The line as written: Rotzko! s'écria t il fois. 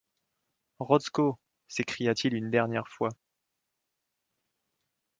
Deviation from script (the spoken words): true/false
true